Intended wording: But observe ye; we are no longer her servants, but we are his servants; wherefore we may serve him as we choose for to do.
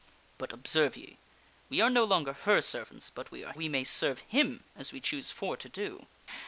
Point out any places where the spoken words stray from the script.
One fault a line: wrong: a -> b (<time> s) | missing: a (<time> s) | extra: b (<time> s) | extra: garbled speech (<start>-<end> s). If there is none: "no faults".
missing: his servants wherefore (3.5 s)